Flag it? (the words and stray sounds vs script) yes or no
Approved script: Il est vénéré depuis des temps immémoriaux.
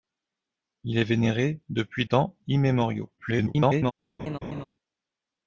yes